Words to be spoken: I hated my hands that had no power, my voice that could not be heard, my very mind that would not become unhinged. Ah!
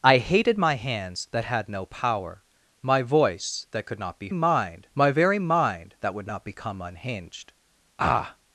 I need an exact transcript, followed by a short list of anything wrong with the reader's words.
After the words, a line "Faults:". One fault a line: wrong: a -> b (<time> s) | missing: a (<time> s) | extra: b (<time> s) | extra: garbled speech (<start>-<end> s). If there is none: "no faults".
I hated my hands that had no power, my voice that could not be mind, my very mind that would not become unhinged. Ah!
Faults:
wrong: heard -> mind (4.3 s)